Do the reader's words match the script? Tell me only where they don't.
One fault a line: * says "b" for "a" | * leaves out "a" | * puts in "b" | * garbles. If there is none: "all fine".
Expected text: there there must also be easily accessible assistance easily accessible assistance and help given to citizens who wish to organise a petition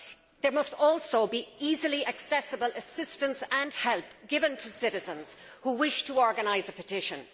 * leaves out "there"
* leaves out "easily accessible assistance"